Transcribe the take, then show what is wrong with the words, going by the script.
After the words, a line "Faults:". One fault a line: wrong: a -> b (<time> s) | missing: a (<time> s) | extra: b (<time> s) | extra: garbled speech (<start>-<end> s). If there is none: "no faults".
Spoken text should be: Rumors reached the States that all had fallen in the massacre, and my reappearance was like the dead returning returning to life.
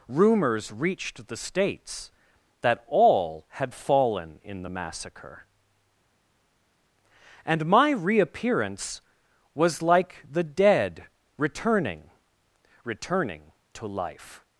Rumors reached the States that all had fallen in the massacre, and my reappearance was like the dead returning returning to life.
Faults:
no faults